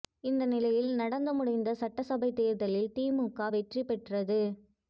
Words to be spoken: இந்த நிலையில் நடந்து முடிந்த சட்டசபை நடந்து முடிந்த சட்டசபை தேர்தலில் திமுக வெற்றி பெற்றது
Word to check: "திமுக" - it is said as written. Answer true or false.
true